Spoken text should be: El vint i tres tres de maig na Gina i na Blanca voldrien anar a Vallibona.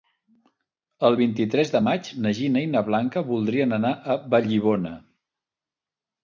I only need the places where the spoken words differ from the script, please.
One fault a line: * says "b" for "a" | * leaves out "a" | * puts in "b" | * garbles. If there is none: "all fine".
* leaves out "tres"